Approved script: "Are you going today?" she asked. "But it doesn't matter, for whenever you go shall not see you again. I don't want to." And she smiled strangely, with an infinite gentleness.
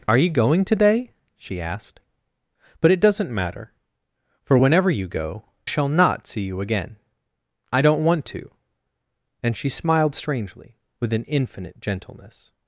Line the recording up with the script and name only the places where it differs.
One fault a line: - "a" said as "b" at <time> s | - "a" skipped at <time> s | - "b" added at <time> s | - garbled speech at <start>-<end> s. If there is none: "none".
none